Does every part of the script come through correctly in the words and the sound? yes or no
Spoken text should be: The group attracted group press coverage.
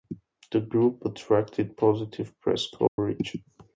no